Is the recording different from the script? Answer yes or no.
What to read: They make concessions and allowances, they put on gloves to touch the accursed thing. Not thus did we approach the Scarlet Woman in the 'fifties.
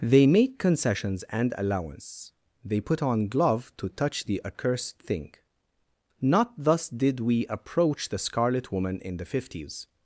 yes